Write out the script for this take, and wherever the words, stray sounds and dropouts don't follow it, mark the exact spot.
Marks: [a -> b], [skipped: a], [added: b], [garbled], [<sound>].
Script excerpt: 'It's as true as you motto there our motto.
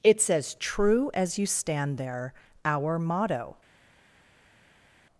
'It's as true as you [motto -> stand] there our motto.